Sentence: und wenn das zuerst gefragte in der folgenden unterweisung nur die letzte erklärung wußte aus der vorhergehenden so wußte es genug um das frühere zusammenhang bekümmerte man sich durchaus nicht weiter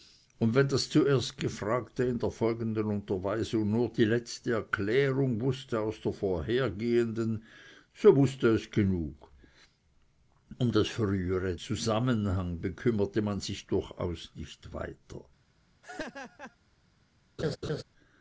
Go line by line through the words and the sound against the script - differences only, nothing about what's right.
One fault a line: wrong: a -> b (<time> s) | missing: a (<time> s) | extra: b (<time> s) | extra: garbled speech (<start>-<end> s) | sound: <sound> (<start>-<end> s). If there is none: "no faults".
sound: laugh (15.8-16.6 s)
sound: laugh (17.4-17.8 s)